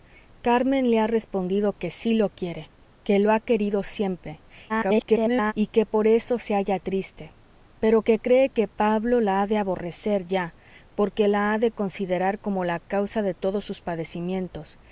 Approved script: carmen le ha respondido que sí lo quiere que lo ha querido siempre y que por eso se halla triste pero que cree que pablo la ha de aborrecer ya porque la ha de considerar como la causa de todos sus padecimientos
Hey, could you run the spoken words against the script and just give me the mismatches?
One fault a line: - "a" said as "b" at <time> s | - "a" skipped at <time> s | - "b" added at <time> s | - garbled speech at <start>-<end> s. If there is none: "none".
- garbled speech at 4.7-5.5 s